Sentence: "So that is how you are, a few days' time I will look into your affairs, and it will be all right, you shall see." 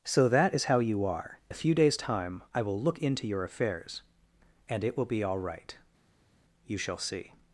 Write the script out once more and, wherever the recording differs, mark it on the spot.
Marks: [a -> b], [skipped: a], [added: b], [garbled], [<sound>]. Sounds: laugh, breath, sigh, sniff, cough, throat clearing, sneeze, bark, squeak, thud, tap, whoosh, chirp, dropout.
"So that is how you are, a few days' time I will look into your affairs, and it will be all right, you shall see."